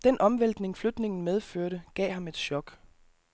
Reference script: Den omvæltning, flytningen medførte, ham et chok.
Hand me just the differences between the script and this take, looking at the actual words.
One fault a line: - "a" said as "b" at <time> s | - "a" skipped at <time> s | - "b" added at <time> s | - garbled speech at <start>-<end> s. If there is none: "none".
- "gav" added at 1.9 s